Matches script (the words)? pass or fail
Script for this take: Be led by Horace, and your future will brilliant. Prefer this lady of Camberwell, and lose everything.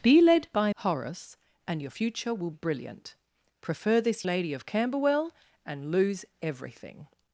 pass